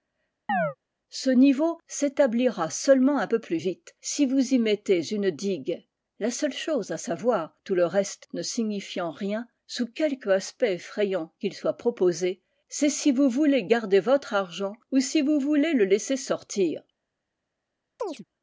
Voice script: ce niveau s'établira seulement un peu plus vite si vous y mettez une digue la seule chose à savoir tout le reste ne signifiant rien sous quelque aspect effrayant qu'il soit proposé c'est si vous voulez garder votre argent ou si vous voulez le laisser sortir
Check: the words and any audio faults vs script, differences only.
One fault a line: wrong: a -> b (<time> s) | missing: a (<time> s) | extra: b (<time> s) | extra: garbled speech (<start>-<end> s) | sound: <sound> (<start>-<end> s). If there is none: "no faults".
sound: chirp (0.5-0.8 s)
sound: chirp (18.0-18.2 s)